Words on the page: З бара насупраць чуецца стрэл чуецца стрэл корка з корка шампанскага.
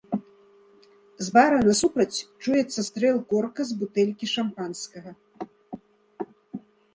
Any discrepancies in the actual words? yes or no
yes